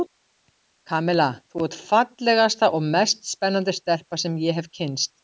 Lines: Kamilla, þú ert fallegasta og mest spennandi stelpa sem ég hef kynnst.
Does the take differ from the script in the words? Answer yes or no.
no